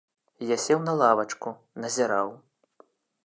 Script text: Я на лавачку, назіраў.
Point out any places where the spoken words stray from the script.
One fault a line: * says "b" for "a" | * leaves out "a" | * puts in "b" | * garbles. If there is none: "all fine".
* puts in "сеў"